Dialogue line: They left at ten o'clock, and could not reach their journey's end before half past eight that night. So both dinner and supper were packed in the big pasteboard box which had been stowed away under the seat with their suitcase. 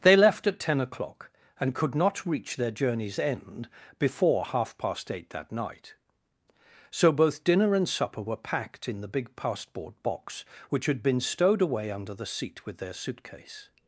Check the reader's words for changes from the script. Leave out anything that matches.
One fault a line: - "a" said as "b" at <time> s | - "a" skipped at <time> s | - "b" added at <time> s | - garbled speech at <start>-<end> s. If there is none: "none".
none